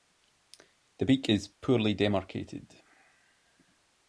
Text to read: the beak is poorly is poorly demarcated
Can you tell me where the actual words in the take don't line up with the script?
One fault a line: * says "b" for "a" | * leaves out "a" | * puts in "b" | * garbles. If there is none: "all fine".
* leaves out "is poorly"